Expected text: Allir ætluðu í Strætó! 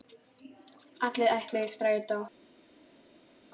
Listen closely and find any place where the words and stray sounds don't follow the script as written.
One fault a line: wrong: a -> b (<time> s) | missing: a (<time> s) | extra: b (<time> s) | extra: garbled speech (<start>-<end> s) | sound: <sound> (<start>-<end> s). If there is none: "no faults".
no faults